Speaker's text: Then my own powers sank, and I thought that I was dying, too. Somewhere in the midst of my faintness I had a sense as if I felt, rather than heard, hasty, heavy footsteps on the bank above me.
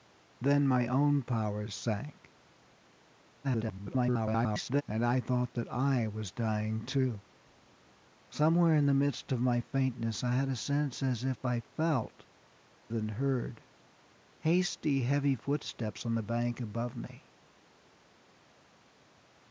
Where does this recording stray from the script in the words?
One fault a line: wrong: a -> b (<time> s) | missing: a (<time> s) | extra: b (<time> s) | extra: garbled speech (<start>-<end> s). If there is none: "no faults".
extra: garbled speech (3.4-4.8 s)
missing: rather (12.2 s)